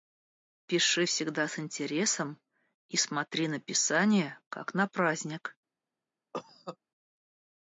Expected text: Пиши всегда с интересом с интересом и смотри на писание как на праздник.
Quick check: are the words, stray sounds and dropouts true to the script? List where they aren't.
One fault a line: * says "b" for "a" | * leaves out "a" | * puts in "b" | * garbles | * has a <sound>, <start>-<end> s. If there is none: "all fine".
* leaves out "с интересом"
* has a cough, 6.3-6.8 s